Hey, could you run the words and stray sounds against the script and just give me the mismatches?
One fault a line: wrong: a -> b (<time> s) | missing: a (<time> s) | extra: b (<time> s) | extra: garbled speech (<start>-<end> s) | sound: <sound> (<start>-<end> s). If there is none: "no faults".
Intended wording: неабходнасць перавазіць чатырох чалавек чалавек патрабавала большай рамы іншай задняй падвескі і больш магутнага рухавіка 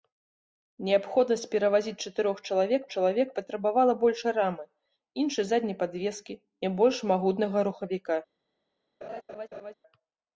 sound: laugh (9.0-9.7 s)